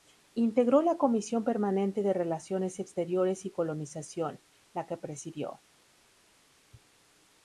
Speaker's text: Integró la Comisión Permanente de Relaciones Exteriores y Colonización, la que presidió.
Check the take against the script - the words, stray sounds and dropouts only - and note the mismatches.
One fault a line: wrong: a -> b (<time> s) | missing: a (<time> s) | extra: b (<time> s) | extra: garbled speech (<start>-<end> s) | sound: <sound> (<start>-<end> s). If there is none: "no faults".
no faults